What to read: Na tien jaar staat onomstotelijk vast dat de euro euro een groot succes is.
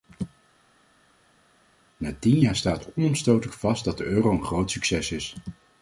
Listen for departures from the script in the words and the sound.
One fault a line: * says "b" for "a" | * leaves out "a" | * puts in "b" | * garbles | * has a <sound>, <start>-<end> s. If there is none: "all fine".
* leaves out "euro"